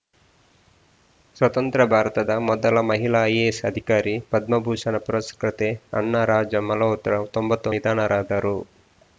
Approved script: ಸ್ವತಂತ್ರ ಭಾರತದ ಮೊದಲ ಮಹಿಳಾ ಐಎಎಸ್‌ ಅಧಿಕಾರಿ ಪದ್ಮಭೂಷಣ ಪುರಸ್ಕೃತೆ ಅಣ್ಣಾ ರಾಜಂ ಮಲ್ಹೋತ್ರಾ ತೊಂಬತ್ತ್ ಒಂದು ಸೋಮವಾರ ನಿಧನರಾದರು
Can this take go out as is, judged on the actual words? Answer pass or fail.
fail